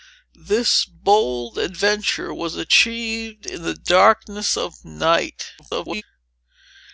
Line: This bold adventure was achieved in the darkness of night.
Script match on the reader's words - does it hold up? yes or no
no